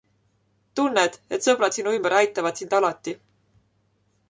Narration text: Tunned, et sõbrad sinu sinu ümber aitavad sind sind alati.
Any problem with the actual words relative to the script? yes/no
yes